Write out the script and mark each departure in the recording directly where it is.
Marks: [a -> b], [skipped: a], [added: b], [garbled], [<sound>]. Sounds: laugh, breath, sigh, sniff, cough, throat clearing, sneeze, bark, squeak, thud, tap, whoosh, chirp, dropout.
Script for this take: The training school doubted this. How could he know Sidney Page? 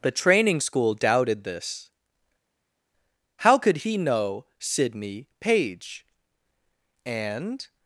The training school doubted this. How could he know Sidney Page? [added: And]